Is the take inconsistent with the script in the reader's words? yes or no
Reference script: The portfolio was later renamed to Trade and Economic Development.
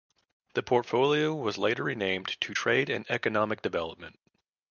no